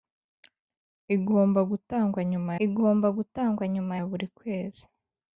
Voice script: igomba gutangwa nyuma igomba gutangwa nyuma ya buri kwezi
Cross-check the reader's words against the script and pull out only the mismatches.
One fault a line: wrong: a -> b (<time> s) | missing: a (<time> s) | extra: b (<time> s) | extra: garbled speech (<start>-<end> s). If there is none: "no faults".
no faults